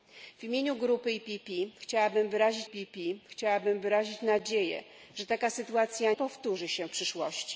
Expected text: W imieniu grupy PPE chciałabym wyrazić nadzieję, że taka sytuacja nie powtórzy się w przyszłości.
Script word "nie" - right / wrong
wrong